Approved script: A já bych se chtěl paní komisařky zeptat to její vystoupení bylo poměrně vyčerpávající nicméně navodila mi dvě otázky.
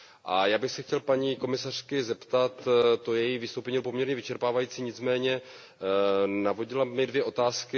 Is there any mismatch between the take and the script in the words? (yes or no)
no